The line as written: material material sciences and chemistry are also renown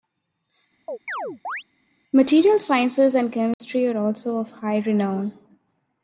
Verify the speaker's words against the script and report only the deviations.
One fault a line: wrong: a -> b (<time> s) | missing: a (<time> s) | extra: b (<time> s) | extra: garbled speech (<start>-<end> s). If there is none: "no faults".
missing: material (2.6 s)
extra: of high (4.4 s)